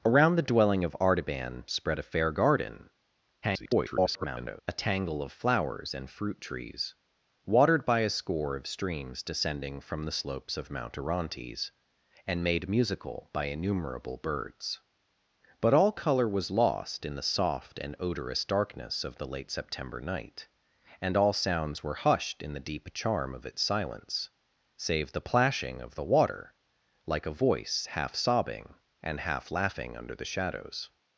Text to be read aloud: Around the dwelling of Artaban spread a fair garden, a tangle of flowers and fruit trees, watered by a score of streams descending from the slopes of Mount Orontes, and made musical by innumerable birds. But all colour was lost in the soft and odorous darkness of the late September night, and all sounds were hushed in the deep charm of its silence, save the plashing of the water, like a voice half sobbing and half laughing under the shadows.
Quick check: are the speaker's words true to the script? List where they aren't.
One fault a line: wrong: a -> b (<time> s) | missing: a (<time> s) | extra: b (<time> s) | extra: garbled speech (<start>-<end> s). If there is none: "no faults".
extra: garbled speech (3.4-4.6 s)